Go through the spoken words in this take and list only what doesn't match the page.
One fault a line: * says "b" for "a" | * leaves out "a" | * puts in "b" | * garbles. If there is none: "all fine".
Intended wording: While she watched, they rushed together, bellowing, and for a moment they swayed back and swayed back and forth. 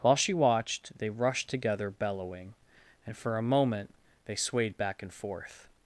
* leaves out "swayed back and"